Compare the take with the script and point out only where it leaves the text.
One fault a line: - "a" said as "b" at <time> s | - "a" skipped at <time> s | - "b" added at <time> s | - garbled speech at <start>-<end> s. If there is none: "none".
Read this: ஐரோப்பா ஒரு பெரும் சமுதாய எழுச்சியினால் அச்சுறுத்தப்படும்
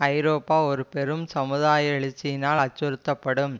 none